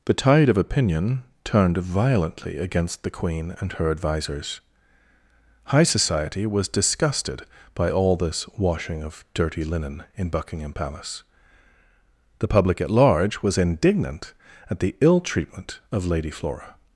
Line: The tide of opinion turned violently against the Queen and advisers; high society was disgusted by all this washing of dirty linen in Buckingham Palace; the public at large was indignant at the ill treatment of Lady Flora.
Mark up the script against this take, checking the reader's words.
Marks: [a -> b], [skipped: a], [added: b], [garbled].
The tide of opinion turned violently against the Queen and [added: her] advisers; high society was disgusted by all this washing of dirty linen in Buckingham Palace; the public at large was indignant at the ill treatment of Lady Flora.